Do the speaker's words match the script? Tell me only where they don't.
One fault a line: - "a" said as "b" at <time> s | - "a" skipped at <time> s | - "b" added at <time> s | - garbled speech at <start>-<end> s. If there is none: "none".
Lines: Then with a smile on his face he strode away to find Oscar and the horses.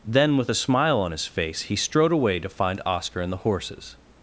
none